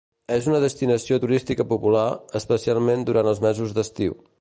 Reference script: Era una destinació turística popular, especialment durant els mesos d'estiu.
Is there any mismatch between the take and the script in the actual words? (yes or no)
yes